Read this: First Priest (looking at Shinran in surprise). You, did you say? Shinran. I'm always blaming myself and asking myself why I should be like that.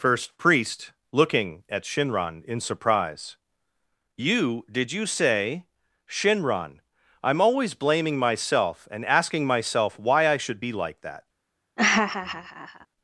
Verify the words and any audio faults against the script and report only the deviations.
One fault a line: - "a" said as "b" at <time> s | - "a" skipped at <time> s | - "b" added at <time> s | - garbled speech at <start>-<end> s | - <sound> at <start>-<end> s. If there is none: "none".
- laugh at 11.8-12.9 s